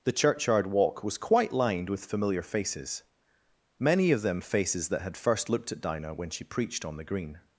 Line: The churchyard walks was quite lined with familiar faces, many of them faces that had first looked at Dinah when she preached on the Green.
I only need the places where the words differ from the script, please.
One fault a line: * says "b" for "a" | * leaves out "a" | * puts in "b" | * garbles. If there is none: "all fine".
* says "walk" for "walks"